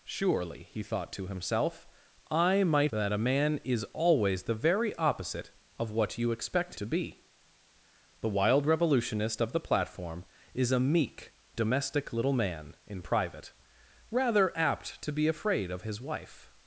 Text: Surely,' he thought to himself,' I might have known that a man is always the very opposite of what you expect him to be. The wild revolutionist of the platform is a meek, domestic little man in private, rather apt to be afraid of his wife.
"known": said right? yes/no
no